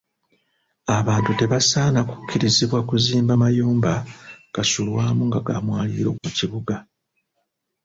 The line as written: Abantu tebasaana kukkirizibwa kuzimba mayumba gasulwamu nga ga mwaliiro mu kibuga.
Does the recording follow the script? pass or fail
pass